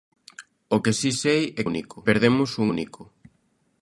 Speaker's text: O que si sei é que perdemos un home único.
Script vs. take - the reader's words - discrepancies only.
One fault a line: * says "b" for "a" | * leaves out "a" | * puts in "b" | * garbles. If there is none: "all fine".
* says "único" for "que"
* leaves out "home"